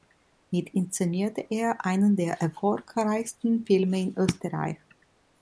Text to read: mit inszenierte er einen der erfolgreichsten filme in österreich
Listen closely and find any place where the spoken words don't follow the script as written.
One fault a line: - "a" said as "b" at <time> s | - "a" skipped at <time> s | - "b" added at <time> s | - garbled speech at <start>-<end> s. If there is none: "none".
none